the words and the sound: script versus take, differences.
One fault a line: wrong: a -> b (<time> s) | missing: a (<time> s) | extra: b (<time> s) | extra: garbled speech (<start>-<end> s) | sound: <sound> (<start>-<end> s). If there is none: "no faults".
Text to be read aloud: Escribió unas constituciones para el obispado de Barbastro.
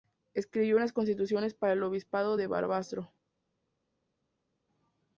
no faults